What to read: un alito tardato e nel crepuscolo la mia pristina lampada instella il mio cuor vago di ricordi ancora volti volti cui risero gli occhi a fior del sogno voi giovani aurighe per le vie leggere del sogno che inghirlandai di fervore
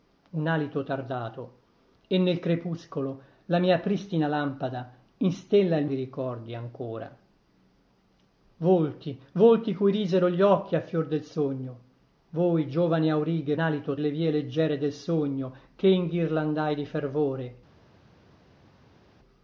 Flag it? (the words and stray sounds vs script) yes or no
yes